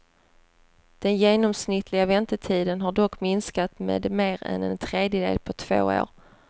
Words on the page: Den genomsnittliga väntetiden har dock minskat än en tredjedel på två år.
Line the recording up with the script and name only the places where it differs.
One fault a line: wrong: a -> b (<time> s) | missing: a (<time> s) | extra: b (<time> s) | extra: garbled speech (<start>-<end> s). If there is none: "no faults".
extra: med mer (3.8 s)